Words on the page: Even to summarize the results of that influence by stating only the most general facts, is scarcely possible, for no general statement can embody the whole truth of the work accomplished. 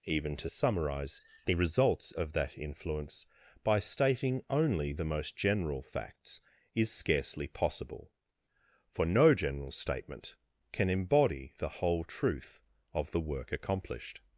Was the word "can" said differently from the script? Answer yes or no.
no